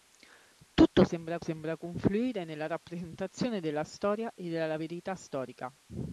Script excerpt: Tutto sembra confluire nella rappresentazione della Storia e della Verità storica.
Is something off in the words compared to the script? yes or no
yes